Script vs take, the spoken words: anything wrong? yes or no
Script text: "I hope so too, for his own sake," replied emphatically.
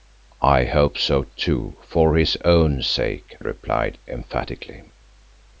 no